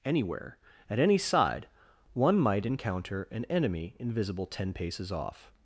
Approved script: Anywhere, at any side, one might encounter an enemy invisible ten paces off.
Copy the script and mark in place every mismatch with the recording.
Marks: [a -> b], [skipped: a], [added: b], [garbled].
Anywhere, at any side, one might encounter an enemy invisible ten paces off.